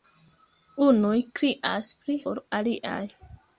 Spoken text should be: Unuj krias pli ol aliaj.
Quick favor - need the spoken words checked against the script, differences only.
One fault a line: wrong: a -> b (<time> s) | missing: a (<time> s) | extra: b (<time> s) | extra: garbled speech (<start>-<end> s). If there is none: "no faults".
no faults